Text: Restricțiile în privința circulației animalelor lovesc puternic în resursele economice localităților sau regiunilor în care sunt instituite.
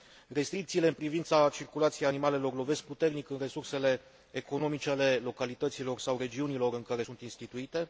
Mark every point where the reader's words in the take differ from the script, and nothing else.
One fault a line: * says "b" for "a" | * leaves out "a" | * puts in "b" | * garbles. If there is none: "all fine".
* puts in "ale"